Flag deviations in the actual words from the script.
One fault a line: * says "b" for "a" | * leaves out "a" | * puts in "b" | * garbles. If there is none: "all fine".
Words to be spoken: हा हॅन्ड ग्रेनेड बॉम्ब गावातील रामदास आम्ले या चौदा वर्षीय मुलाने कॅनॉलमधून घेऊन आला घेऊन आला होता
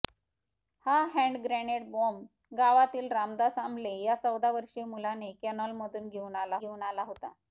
all fine